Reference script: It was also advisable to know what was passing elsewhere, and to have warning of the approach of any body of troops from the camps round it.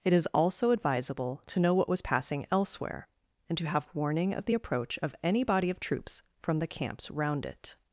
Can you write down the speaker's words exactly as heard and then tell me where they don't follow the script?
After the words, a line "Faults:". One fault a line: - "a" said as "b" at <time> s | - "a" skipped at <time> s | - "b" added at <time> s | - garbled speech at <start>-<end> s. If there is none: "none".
It is also advisable to know what was passing elsewhere, and to have warning of the approach of any body of troops from the camps round it.
Faults:
- "was" said as "is" at 0.1 s